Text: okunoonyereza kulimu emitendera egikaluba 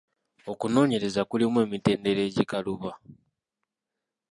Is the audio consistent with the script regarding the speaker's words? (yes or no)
yes